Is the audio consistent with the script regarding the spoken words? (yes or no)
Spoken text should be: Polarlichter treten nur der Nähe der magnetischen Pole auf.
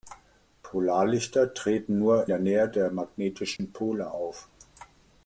yes